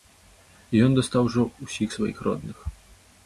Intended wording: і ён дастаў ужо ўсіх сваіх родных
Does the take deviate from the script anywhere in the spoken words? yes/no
no